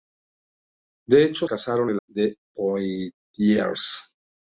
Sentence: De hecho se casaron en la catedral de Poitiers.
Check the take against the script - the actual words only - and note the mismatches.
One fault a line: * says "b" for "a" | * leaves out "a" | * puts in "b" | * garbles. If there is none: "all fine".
* leaves out "se"
* leaves out "la catedral"